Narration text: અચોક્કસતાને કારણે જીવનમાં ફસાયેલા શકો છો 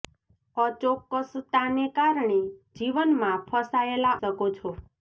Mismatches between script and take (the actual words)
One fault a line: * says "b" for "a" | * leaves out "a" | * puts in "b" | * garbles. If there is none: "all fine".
all fine